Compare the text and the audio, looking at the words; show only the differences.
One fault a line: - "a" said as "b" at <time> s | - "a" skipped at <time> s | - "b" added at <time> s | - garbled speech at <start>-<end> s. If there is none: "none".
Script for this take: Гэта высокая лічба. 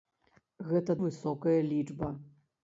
none